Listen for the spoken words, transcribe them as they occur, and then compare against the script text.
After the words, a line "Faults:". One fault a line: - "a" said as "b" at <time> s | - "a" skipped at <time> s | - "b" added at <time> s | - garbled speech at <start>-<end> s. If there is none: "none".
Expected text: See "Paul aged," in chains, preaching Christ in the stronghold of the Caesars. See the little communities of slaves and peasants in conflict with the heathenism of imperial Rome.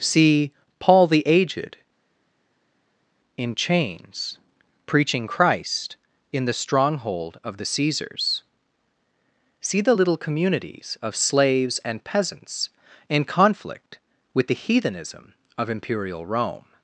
See "Paul the aged," in chains, preaching Christ in the stronghold of the Caesars. See the little communities of slaves and peasants in conflict with the heathenism of imperial Rome.
Faults:
- "the" added at 1.1 s